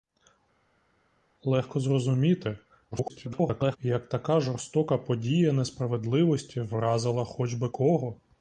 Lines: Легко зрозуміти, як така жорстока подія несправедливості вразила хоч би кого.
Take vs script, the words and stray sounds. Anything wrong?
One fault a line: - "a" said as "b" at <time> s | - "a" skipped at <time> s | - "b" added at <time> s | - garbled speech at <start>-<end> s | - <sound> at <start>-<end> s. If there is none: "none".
- garbled speech at 2.9-3.8 s